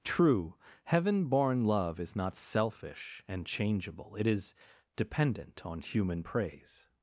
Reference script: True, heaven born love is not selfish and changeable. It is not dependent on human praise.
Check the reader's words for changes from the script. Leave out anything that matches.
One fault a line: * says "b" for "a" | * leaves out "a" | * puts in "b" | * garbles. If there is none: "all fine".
* leaves out "not"